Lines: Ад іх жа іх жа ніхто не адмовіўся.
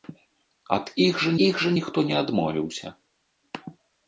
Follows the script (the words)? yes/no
yes